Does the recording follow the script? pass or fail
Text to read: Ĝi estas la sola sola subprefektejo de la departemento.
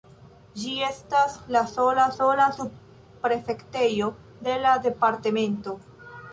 pass